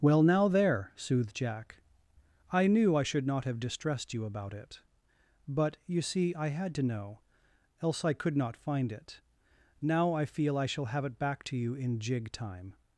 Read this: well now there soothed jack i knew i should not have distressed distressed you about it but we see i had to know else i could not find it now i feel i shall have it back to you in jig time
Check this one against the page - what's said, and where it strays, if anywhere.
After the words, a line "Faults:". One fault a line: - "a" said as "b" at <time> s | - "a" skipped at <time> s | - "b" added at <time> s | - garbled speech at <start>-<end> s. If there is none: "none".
well now there soothed jack i knew i should not have distressed you about it but you see i had to know else i could not find it now i feel i shall have it back to you in jig time
Faults:
- "distressed" skipped at 4.1 s
- "we" said as "you" at 5.9 s